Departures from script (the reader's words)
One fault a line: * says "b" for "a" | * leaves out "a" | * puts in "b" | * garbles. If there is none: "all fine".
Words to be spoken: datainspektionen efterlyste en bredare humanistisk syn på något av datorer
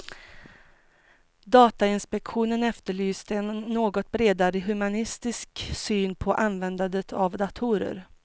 * puts in "något"
* says "användandet" for "något"